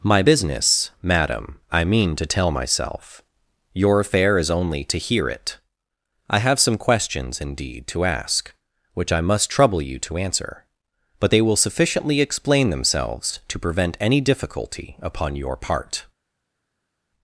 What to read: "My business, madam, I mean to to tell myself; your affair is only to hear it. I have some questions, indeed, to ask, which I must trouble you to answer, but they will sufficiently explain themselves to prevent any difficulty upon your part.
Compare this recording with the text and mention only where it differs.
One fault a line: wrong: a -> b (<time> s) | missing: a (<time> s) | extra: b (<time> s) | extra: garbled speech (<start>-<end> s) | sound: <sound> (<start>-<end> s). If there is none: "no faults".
missing: to (2.3 s)